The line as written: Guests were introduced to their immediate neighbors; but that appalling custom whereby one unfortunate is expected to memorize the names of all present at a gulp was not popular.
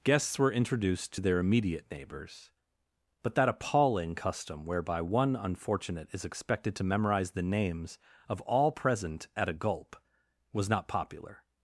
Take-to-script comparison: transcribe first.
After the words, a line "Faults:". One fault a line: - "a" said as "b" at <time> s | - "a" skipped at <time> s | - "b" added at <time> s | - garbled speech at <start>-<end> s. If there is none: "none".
Guests were introduced to their immediate neighbors; but that appalling custom whereby one unfortunate is expected to memorize the names of all present at a gulp was not popular.
Faults:
none